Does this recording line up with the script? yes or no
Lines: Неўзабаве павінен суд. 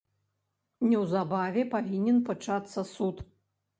no